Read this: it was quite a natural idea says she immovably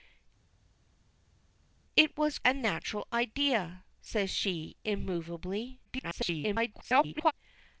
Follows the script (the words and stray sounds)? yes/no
no